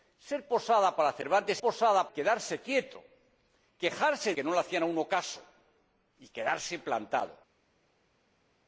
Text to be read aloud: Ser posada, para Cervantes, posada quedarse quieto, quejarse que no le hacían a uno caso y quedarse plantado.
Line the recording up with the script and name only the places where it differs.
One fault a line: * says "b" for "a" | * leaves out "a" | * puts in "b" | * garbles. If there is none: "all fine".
all fine